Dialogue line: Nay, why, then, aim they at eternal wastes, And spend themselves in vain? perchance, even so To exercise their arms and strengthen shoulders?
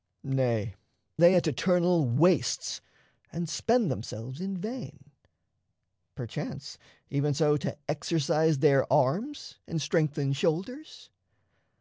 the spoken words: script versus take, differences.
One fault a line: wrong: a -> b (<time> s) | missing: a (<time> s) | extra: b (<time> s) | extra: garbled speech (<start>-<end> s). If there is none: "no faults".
missing: why then aim (0.7 s)